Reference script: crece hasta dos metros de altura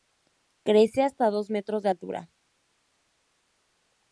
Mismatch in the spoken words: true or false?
false